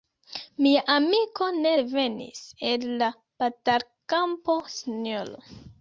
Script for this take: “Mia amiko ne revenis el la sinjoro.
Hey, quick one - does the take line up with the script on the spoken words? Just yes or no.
no